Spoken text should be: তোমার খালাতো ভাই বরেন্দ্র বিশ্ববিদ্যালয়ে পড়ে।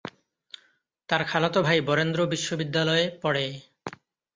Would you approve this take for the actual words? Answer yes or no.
no